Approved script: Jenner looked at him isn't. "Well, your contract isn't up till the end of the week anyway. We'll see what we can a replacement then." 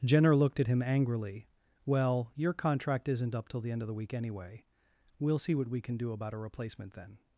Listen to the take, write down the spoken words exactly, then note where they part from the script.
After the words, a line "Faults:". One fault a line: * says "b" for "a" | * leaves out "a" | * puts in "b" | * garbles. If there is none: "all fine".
Jenner looked at him angrily. "Well, your contract isn't up till the end of the week anyway. We'll see what we can do about a replacement then."
Faults:
* says "angrily" for "isn't"
* puts in "do about"